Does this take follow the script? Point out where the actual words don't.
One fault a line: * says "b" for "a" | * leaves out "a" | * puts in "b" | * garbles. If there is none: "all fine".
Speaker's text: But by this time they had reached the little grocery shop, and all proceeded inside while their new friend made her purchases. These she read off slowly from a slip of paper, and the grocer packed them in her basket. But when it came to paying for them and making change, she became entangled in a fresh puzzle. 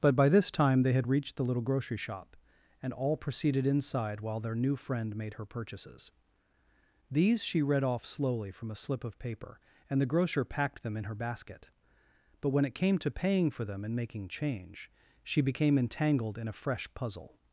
all fine